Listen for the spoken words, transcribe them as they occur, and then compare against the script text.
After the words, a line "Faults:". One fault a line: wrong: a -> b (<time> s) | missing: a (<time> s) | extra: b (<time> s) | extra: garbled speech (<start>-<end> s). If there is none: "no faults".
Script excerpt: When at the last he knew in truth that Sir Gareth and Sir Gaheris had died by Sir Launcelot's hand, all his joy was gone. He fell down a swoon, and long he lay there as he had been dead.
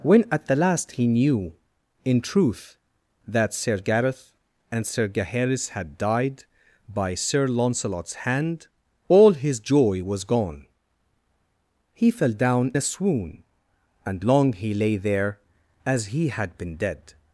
When at the last he knew in truth that Sir Gareth and Sir Gaheris had died by Sir Launcelot's hand, all his joy was gone. He fell down a swoon, and long he lay there as he had been dead.
Faults:
no faults